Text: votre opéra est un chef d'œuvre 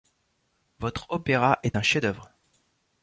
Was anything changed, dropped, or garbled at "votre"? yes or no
no